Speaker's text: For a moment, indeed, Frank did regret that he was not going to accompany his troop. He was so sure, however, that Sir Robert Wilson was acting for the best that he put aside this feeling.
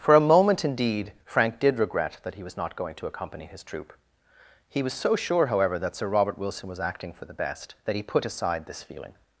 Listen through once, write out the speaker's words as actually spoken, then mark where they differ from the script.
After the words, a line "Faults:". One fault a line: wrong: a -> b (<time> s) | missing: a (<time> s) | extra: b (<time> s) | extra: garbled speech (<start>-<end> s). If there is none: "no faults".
For a moment, indeed, Frank did regret that he was not going to accompany his troop. He was so sure, however, that Sir Robert Wilson was acting for the best that he put aside this feeling.
Faults:
no faults